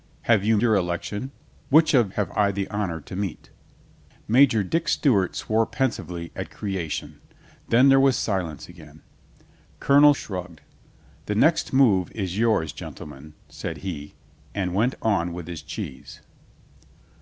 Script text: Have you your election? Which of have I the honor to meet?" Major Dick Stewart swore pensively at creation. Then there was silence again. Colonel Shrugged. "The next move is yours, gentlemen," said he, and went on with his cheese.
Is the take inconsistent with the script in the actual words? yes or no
no